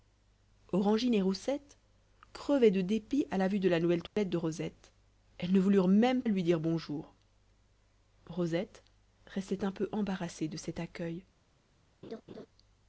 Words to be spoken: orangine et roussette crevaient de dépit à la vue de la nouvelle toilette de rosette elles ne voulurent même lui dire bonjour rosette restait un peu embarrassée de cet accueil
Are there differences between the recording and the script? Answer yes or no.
no